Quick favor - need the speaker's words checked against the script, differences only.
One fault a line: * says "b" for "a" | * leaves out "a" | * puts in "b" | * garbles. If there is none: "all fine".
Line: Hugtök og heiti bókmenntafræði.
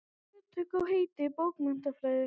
all fine